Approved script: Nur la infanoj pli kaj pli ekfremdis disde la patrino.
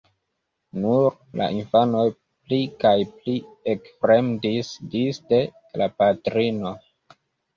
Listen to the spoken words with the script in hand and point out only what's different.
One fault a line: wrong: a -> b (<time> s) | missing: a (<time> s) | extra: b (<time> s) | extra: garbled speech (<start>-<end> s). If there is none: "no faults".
no faults